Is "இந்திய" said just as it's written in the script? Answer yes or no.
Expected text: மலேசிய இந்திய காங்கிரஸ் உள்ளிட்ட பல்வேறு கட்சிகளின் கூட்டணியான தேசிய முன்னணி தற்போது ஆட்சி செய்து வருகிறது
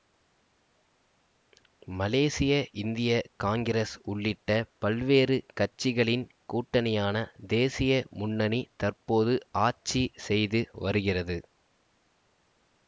yes